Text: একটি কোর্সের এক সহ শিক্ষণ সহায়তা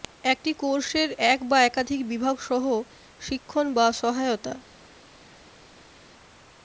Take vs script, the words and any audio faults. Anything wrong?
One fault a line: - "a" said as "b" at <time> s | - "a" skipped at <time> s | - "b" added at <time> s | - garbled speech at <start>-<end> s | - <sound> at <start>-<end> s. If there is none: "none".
- "বা একাধিক বিভাগ" added at 1.4 s
- "বা" added at 3.7 s